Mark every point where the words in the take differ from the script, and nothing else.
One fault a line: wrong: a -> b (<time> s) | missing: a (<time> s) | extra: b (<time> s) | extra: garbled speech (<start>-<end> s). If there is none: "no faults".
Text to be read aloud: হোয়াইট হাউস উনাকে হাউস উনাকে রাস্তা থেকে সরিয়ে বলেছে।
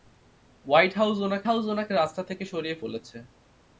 no faults